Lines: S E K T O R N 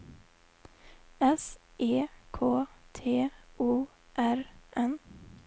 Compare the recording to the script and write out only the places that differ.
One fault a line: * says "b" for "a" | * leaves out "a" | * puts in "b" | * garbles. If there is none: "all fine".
all fine